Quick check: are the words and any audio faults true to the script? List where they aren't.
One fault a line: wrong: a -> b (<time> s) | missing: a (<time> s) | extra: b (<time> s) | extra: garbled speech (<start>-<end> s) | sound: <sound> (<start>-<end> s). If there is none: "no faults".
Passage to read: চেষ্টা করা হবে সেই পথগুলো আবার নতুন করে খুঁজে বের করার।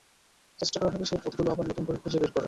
no faults